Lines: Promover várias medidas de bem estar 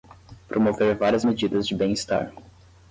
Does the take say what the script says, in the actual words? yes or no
yes